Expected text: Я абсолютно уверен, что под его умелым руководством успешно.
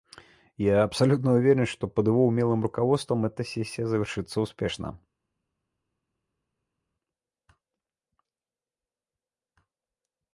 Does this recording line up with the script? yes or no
no